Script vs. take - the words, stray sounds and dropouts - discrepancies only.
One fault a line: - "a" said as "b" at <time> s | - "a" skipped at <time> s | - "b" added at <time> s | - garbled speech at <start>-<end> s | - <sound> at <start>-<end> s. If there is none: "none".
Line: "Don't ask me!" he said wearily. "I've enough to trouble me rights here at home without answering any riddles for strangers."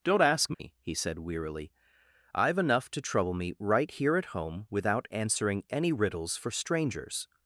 - dropout at 0.5-0.6 s
- "rights" said as "right" at 3.6 s